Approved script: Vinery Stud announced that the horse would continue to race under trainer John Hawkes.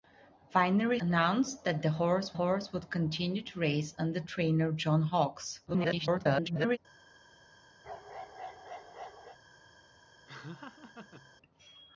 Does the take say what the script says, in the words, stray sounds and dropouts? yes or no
no